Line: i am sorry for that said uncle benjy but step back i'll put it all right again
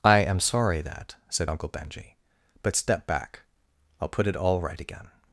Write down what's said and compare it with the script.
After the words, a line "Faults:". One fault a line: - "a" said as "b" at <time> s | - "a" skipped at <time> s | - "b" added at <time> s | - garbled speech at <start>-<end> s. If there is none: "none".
i am sorry that said uncle benjy but step back i'll put it all right again
Faults:
- "for" skipped at 0.8 s